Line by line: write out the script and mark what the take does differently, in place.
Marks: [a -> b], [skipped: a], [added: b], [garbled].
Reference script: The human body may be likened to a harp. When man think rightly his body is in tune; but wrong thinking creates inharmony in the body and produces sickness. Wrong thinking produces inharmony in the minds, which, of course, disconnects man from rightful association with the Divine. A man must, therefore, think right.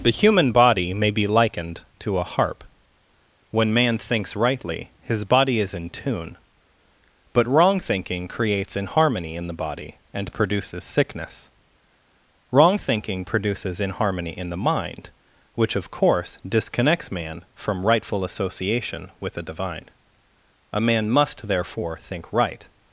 The human body may be likened to a harp. When man [think -> thinks] rightly his body is in tune; but wrong thinking creates inharmony in the body and produces sickness. Wrong thinking produces inharmony in the [minds, -> mind] which, of course, disconnects man from rightful association with the Divine. A man must, therefore, think right.